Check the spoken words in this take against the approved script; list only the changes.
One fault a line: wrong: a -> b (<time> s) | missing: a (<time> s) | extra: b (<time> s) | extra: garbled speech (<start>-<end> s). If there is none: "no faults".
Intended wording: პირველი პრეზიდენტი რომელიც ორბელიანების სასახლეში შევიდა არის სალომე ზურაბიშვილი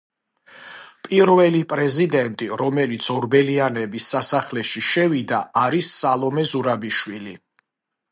no faults